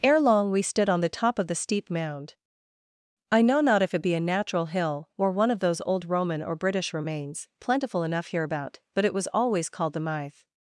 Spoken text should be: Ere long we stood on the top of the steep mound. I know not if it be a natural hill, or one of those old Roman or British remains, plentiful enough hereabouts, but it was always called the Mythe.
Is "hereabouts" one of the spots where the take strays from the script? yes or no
yes